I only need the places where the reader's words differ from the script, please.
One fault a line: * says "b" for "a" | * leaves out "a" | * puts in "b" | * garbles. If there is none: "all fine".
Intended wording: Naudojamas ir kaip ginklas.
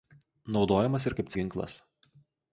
all fine